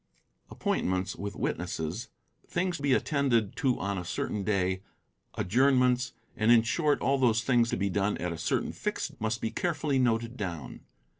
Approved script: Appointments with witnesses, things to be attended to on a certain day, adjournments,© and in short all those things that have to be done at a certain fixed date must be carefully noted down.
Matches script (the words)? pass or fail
fail